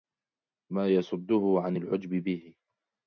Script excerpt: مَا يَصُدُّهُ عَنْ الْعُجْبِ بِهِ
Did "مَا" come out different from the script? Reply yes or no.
no